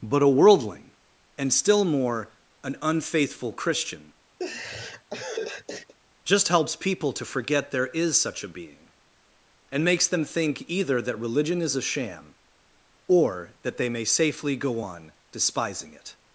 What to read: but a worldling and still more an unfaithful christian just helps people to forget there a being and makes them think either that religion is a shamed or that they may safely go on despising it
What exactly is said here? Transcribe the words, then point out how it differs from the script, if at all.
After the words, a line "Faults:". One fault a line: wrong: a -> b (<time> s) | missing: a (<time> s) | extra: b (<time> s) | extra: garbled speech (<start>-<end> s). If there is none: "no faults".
but a worldling and still more an unfaithful christian just helps people to forget there is such a being and makes them think either that religion is a sham or that they may safely go on despising it
Faults:
extra: is such (7.9 s)
wrong: shamed -> sham (11.8 s)